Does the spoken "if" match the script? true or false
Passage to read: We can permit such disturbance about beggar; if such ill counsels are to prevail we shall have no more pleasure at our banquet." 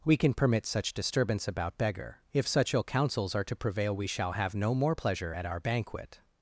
true